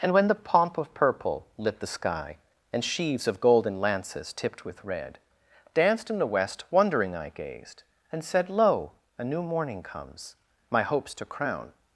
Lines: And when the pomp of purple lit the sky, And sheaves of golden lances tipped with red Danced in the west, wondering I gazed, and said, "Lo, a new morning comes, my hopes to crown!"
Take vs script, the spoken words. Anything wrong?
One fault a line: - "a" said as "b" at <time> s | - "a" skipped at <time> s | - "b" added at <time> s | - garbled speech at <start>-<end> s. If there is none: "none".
none